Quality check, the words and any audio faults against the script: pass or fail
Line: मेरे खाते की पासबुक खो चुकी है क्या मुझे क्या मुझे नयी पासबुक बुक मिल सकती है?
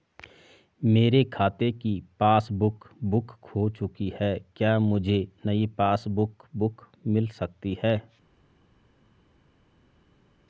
fail